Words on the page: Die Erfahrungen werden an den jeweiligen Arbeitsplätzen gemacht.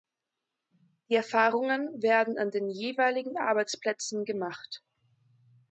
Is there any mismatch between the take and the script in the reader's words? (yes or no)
no